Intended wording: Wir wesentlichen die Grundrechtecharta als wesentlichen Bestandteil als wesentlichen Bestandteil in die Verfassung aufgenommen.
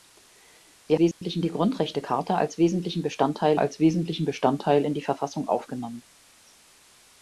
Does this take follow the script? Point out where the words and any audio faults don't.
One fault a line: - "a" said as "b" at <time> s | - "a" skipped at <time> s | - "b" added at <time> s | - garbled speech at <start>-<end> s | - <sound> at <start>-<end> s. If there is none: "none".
- dropout at 1.1-1.2 s